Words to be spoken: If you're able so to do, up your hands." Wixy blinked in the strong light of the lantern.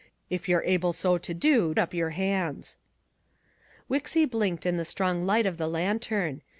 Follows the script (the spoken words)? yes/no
yes